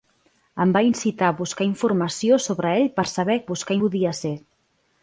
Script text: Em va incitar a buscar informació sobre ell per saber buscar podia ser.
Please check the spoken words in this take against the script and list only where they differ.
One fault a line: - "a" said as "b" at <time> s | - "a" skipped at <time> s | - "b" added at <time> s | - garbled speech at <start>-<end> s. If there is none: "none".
none